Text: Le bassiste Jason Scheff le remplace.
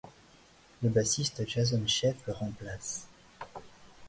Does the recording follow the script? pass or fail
pass